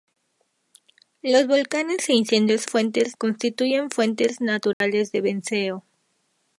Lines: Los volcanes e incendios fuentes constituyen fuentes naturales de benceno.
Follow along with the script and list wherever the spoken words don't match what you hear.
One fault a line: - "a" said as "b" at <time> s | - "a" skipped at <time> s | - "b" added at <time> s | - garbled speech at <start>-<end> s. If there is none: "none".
none